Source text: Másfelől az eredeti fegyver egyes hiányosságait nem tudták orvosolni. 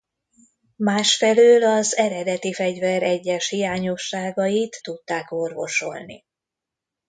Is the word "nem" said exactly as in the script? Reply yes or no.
no